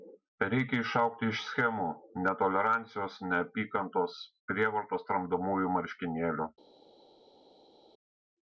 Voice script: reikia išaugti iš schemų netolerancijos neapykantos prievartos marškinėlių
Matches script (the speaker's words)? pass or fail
fail